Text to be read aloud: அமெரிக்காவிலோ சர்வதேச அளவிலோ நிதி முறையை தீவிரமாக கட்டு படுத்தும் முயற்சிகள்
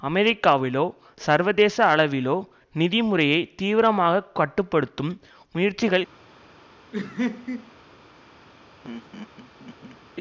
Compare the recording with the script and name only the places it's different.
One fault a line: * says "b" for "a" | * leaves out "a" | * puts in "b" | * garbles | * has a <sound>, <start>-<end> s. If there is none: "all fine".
* has a laugh, 6.9-7.7 s
* has a laugh, 8.8-10.0 s